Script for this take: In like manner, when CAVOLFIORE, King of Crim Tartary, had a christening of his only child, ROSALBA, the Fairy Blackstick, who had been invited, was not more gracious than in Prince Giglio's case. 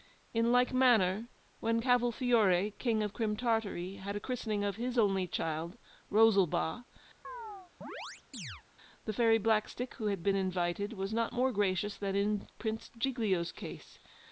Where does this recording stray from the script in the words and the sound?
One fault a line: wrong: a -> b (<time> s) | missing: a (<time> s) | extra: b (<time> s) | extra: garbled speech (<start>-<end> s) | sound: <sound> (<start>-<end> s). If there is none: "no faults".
sound: chirp (7.2-8.6 s)